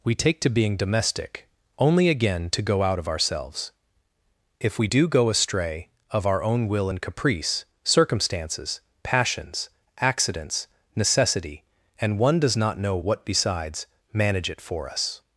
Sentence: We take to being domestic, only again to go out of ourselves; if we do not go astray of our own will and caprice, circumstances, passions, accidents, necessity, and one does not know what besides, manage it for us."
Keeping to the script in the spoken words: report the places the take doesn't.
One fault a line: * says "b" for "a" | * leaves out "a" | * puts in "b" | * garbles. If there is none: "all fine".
* leaves out "not"